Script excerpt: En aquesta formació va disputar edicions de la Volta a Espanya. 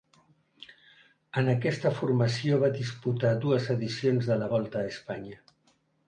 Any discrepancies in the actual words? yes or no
yes